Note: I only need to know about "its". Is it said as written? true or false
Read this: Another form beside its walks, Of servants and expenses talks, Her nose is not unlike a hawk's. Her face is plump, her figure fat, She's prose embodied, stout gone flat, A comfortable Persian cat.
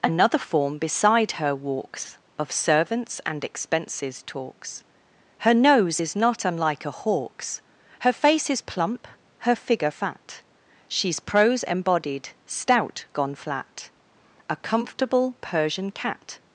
false